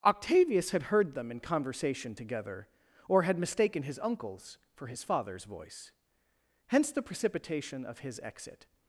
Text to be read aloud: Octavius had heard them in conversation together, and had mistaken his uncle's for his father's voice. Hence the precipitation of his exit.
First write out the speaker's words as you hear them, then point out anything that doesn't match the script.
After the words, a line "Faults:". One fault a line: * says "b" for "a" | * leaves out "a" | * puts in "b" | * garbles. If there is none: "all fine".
Octavius had heard them in conversation together, or had mistaken his uncle's for his father's voice. Hence the precipitation of his exit.
Faults:
* says "or" for "and"